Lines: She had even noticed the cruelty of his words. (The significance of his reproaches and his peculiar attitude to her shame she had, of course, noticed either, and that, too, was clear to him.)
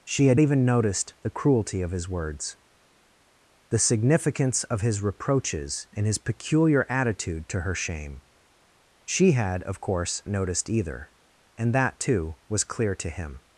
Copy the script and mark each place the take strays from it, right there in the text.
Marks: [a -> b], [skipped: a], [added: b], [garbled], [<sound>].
She had even noticed the cruelty of his words. (The significance of his reproaches and his peculiar attitude to her shame she had, of course, noticed either, and that, too, was clear to him.)